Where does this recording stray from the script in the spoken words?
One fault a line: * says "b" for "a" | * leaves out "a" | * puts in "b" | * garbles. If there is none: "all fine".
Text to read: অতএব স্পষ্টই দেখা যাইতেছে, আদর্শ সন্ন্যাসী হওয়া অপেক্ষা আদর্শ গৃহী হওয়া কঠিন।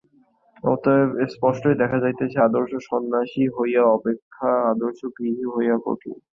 all fine